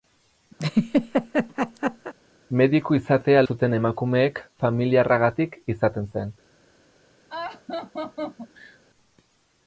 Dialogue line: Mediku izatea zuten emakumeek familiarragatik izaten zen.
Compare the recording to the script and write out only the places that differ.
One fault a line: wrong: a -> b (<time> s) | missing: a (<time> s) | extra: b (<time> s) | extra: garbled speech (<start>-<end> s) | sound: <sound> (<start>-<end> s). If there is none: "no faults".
sound: laugh (0.6-2.1 s)
sound: laugh (7.3-8.8 s)